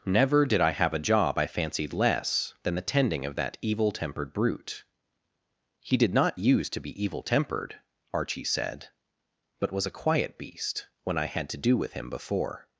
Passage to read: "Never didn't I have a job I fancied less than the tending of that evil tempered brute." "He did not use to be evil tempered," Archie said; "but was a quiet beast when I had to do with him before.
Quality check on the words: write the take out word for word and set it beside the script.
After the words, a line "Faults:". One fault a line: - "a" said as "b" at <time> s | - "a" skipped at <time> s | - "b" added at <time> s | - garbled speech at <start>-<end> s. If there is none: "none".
"Never did I have a job I fancied less than the tending of that evil tempered brute." "He did not use to be evil tempered," Archie said; "but was a quiet beast when I had to do with him before.
Faults:
- "didn't" said as "did" at 0.5 s